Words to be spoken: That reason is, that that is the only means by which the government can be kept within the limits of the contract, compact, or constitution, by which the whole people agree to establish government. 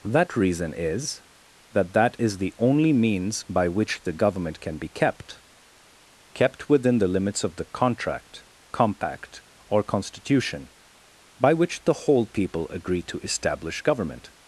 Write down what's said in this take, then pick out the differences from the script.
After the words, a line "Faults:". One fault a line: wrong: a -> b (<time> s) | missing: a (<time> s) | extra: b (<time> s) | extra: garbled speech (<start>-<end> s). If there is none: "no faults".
That reason is, that that is the only means by which the government can be kept kept within the limits of the contract, compact, or constitution, by which the whole people agree to establish government.
Faults:
extra: kept (6.3 s)